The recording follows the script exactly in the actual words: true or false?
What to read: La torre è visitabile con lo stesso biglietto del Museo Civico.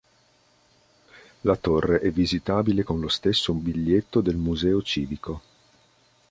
true